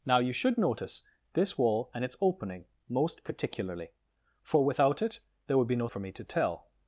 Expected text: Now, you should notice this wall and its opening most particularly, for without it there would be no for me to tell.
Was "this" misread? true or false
false